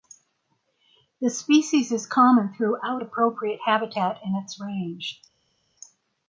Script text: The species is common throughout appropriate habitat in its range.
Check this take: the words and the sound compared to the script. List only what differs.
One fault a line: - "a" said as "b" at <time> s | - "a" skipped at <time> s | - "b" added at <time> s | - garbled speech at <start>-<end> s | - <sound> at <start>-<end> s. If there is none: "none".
none